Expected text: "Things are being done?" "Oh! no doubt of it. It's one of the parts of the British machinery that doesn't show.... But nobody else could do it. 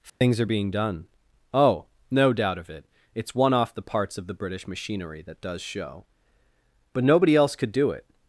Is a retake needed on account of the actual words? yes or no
yes